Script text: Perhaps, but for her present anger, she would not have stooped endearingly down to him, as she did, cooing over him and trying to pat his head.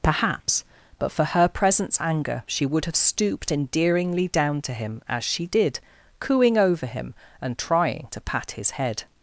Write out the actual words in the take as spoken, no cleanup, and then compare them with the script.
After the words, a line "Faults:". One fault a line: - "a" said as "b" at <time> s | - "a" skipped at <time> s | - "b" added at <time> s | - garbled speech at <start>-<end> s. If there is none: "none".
Perhaps, but for her presents anger, she would have stooped endearingly down to him, as she did, cooing over him and trying to pat his head.
Faults:
- "present" said as "presents" at 1.5 s
- "not" skipped at 2.9 s